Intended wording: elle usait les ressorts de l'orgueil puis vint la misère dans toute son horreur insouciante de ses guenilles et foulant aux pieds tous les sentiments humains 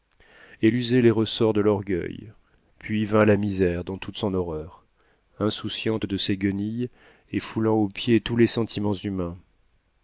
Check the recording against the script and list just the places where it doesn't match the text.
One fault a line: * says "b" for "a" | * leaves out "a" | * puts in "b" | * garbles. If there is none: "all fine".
all fine